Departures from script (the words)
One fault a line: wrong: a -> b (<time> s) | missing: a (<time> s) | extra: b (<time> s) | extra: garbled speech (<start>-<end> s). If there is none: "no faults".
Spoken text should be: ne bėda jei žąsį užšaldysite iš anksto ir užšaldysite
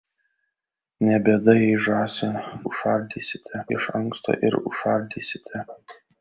no faults